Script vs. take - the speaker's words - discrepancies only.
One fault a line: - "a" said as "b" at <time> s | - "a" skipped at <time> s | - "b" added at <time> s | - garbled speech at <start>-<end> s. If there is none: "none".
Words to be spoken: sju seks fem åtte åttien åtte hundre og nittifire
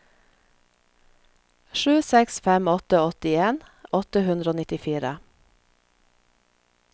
none